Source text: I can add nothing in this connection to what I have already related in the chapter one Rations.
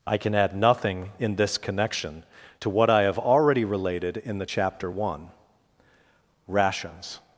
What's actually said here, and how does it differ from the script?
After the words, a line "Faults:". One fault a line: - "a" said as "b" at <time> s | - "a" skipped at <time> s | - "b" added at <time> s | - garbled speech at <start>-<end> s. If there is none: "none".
I can add nothing in this connection to what I have already related in the chapter one Rations.
Faults:
none